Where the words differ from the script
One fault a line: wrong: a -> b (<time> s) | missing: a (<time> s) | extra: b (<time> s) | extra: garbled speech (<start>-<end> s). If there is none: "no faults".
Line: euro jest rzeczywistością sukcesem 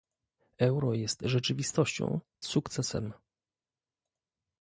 no faults